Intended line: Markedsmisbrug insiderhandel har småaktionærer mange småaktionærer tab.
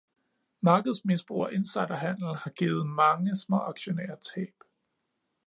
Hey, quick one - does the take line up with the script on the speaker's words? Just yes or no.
no